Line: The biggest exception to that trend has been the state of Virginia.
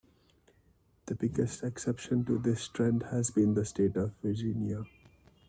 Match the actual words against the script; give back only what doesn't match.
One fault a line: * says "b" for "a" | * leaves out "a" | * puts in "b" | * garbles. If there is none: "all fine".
* says "this" for "that"